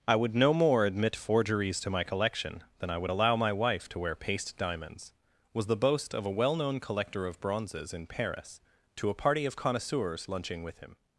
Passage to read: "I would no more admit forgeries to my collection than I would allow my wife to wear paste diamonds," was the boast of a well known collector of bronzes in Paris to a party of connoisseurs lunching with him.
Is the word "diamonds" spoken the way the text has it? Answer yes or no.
yes